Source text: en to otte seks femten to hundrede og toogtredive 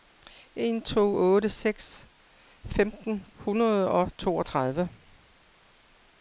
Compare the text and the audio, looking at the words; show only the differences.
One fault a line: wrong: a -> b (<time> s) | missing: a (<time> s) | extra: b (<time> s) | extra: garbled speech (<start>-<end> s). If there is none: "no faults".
missing: to (3.2 s)